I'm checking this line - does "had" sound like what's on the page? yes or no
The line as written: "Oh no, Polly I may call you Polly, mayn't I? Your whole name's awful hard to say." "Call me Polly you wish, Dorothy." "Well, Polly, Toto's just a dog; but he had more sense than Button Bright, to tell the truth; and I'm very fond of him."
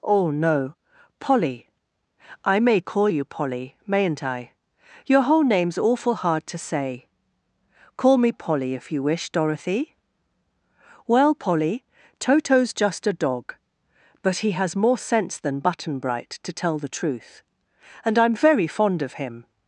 no